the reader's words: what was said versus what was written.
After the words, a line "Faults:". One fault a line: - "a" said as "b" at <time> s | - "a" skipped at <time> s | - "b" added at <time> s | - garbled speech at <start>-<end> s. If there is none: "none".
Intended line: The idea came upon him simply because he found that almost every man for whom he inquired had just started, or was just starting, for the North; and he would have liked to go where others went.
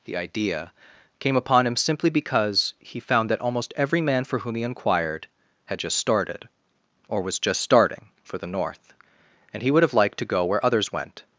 The idea came upon him simply because he found that almost every man for whom he inquired had just started, or was just starting, for the North; and he would have liked to go where others went.
Faults:
none